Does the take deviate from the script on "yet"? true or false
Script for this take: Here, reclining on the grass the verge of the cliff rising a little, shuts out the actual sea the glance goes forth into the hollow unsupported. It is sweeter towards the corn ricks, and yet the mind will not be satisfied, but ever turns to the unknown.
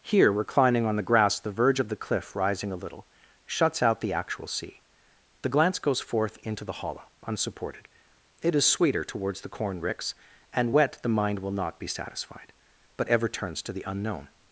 true